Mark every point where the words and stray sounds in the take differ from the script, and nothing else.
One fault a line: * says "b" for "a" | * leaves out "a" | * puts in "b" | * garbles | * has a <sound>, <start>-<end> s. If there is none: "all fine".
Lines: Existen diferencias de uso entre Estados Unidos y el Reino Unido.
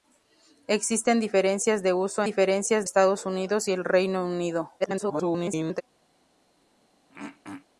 * says "diferencias" for "entre"
* garbles
* has a throat clearing, 7.1-7.7 s